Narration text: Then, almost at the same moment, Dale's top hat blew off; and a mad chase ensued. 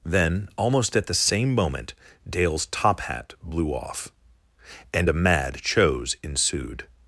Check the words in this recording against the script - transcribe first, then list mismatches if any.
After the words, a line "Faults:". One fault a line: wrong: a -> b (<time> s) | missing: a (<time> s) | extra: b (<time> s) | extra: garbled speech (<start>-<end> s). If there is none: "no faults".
Then, almost at the same moment, Dale's top hat blew off; and a mad chose ensued.
Faults:
wrong: chase -> chose (5.6 s)